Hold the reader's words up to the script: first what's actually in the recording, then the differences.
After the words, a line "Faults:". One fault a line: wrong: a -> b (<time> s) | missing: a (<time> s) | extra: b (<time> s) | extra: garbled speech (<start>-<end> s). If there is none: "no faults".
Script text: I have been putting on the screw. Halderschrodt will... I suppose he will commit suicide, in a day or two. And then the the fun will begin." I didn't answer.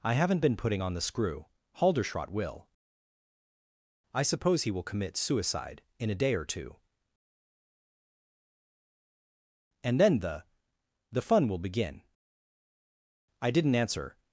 I haven't been putting on the screw. Halderschrodt will... I suppose he will commit suicide, in a day or two. And then the the fun will begin." I didn't answer.
Faults:
wrong: have -> haven't (0.1 s)